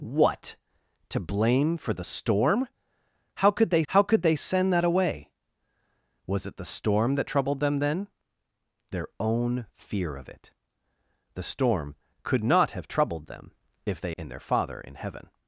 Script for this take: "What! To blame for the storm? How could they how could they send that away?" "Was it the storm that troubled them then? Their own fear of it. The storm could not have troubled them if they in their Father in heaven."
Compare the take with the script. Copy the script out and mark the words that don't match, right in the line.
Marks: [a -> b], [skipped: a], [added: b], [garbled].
"What! To blame for the storm? How could they how could they send that away?" "Was it the storm that troubled them then? Their own fear of it. The storm could not have troubled them if they in their Father in heaven."